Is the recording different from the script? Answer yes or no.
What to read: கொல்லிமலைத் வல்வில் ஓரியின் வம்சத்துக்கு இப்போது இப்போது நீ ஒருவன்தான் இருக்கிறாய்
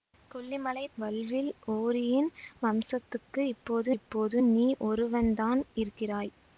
no